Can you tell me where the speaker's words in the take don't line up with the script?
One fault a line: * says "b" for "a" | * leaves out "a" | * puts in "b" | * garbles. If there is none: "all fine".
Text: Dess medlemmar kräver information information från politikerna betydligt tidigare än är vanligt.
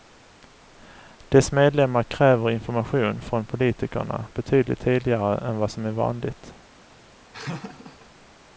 * leaves out "information"
* puts in "vad som"